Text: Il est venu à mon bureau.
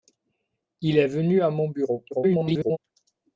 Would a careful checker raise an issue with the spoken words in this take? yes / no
yes